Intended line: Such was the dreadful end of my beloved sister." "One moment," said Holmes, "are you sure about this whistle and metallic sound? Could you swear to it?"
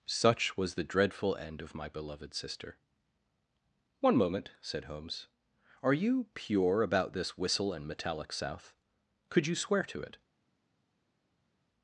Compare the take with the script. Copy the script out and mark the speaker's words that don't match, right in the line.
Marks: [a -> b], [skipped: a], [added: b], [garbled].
Such was the dreadful end of my beloved sister." "One moment," said Holmes, "are you [sure -> pure] about this whistle and metallic [sound? -> south] Could you swear to it?"